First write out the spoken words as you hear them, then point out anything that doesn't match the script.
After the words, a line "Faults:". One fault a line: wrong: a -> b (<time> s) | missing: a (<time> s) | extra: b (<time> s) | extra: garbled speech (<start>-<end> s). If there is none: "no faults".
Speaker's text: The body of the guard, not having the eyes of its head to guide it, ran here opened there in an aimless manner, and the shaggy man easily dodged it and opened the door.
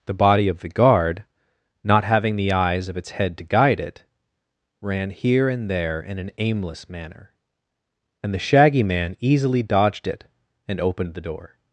The body of the guard, not having the eyes of its head to guide it, ran here and there in an aimless manner, and the shaggy man easily dodged it and opened the door.
Faults:
wrong: opened -> and (5.5 s)